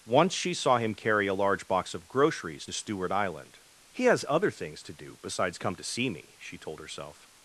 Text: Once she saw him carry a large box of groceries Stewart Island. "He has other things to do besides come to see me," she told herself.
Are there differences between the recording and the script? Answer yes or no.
no